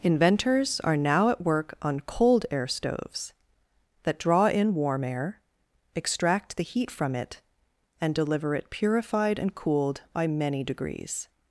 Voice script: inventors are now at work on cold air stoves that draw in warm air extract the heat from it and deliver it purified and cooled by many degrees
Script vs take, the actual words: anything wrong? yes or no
no